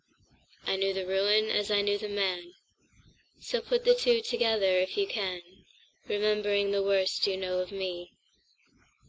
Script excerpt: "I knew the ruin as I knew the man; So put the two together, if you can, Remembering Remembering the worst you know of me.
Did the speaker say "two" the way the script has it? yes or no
yes